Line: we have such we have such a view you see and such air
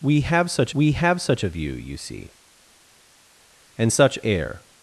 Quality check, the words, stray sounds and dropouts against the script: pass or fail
pass